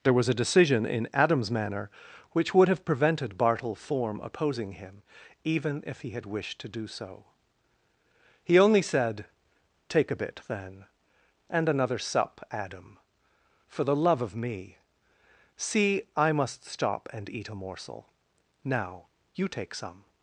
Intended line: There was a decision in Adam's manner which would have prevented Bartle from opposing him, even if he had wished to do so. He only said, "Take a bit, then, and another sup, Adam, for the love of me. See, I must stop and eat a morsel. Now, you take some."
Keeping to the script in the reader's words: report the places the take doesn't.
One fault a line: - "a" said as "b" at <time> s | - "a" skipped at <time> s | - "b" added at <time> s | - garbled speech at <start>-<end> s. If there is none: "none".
- "from" said as "form" at 3.8 s